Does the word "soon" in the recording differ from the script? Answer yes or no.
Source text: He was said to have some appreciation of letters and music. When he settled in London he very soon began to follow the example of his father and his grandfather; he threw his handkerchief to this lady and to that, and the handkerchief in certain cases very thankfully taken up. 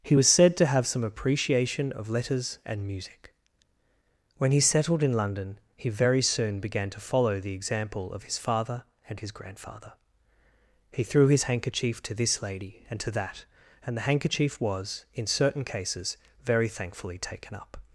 no